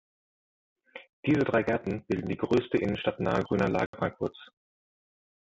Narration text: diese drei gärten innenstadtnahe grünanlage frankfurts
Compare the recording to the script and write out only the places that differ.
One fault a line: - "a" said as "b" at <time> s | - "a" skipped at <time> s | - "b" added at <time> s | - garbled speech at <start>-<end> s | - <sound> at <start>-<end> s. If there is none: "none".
- "bilden die größte" added at 2.1 s
- dropout at 3.9-3.9 s